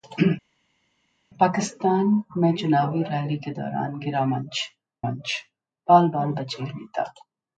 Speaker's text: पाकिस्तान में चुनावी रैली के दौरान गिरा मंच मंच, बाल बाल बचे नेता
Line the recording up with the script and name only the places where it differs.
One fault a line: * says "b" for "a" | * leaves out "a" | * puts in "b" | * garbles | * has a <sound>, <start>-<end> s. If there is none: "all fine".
all fine